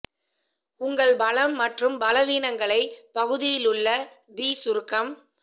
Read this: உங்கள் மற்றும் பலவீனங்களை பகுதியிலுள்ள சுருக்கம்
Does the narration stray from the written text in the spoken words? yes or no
yes